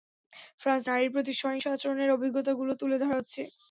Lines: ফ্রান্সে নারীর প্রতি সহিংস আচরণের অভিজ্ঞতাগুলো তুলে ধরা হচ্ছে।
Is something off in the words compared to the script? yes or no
no